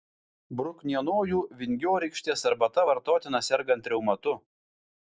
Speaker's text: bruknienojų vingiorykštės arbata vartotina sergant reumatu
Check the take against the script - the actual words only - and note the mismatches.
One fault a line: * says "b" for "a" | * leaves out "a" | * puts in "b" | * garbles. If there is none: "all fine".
all fine